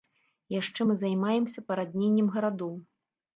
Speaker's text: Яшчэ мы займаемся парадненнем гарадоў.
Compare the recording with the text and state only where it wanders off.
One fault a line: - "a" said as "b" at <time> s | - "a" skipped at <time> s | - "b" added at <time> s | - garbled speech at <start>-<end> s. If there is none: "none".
none